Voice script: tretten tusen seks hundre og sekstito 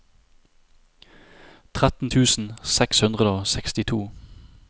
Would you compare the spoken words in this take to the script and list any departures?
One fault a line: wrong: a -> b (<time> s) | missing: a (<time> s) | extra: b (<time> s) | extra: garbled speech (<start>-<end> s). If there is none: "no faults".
no faults